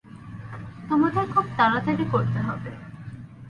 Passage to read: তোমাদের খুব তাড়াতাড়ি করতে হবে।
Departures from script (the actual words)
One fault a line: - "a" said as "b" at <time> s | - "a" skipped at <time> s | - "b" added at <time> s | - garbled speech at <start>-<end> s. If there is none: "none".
none